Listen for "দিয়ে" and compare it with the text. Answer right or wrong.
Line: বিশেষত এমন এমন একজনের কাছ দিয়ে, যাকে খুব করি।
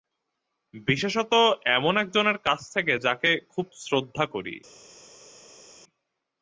wrong